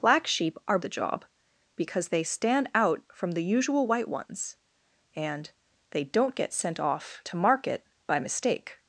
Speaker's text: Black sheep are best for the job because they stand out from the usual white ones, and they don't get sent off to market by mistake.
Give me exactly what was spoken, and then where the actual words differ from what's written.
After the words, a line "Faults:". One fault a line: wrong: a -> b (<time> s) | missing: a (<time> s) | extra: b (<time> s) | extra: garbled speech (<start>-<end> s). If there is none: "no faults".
Black sheep are the job because they stand out from the usual white ones, and they don't get sent off to market by mistake.
Faults:
missing: best for (0.8 s)